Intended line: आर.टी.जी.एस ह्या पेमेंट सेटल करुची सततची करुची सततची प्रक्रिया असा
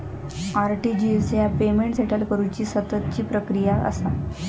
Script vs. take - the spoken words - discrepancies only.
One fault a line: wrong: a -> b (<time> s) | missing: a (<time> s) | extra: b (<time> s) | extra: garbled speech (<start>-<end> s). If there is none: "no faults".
missing: करुची सततची (3.2 s)